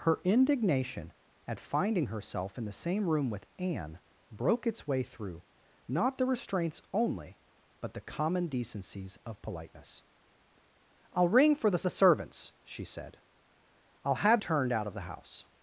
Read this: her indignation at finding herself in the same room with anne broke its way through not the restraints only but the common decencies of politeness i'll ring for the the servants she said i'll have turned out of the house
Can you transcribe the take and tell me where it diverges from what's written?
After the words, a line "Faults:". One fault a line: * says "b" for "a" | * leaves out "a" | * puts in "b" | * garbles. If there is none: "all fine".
her indignation at finding herself in the same room with anne broke its way through not the restraints only but the common decencies of politeness i'll ring for the the servants she said i'll have turned out of the house
Faults:
all fine